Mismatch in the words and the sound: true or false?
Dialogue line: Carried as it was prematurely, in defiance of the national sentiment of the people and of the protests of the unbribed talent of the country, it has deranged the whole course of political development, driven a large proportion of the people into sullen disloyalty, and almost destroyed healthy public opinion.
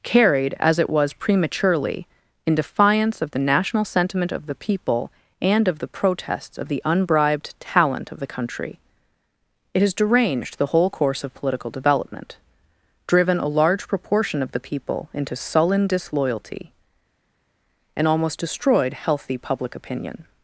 false